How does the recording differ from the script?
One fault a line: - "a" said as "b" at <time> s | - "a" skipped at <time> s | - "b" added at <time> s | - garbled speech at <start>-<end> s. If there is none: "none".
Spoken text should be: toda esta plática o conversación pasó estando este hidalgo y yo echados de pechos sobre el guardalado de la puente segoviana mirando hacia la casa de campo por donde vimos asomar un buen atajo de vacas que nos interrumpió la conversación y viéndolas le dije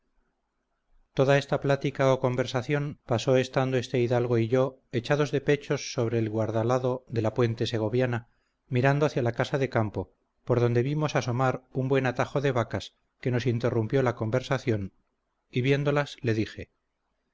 none